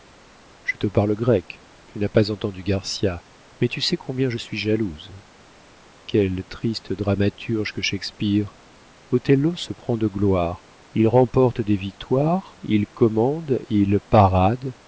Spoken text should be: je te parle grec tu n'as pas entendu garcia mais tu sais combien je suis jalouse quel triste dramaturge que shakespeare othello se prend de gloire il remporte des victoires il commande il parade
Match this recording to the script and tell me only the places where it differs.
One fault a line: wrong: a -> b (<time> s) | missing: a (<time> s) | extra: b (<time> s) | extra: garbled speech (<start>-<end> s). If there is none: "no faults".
no faults